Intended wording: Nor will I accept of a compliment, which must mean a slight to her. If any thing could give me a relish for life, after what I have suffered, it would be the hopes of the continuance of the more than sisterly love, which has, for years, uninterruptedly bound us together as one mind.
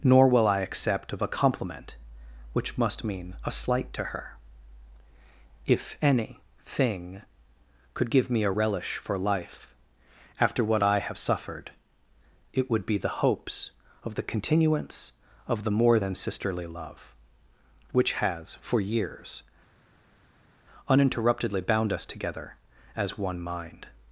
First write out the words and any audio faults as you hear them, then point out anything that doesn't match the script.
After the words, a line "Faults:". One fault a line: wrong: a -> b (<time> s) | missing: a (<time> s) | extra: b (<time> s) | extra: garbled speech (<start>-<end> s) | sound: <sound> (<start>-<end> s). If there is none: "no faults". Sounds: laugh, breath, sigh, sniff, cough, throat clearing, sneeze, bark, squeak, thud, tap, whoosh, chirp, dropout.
Nor will I accept of a compliment, which must mean a slight to her. If any thing could give me a relish for life, after what I have suffered, it would be the hopes of the continuance of the more than sisterly love, which has, for years, uninterruptedly bound us together as one mind.
Faults:
no faults